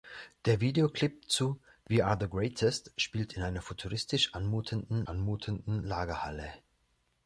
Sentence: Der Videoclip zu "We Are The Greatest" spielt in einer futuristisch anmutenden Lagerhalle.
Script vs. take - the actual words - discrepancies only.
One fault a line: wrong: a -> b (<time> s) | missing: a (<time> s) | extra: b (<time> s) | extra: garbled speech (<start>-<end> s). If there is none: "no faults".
extra: anmutenden (5.1 s)